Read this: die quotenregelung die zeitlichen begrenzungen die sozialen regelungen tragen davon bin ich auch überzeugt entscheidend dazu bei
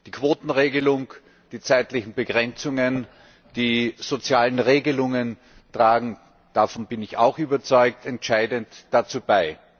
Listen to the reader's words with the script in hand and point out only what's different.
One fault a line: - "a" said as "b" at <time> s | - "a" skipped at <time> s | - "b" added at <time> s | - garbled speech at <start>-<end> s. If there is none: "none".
none